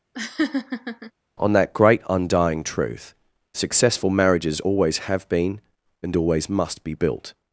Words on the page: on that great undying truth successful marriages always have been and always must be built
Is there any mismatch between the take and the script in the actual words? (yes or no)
no